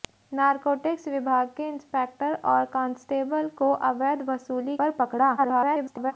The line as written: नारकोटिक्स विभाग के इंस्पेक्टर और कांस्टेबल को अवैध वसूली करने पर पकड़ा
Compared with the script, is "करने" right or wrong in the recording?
wrong